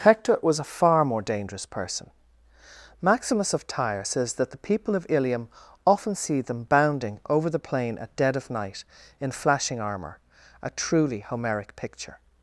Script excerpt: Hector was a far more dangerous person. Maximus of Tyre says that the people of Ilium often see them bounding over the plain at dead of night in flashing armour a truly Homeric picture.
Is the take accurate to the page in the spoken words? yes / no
yes